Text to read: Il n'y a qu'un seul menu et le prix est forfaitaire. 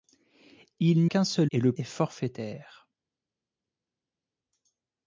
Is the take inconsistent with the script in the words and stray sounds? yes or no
yes